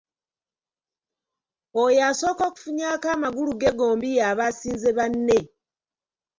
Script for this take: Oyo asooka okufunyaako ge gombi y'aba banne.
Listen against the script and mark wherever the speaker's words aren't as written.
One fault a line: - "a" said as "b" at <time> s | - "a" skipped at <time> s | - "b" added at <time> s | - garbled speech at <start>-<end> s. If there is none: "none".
- "amagulu" added at 3.1 s
- "asinze" added at 4.5 s